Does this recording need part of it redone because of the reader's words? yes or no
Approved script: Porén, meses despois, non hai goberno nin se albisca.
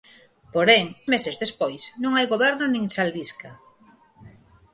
no